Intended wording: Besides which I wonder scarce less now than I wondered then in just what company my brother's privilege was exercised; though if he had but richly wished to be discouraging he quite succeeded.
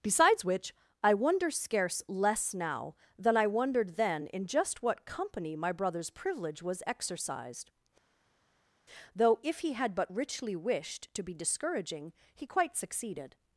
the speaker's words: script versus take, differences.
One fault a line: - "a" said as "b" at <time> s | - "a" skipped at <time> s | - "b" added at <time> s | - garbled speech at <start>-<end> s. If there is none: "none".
none